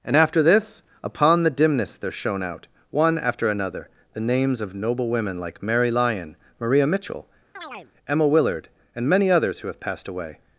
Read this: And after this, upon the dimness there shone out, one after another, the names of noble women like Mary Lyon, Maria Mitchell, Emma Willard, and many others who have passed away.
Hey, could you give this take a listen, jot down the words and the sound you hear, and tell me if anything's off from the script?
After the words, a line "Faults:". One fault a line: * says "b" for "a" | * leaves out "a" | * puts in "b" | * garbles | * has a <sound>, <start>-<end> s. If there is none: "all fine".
And after this, upon the dimness there shone out, one after another, the names of noble women like Mary Lyon, Maria Mitchell, Emma Willard, and many others who have passed away.
Faults:
* has a chirp, 7.6-7.9 s